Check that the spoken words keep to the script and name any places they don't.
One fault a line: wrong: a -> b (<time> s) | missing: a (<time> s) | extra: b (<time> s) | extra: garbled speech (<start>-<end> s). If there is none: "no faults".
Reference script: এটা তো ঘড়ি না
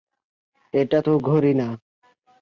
no faults